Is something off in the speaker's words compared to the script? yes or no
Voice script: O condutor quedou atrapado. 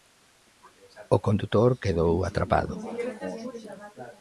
no